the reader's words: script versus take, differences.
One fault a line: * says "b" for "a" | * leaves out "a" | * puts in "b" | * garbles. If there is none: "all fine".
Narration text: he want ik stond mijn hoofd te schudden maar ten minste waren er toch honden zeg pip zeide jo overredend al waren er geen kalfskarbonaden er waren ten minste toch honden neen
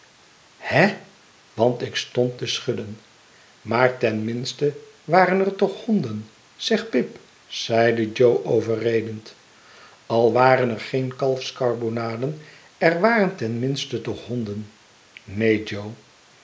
* leaves out "mijn hoofd"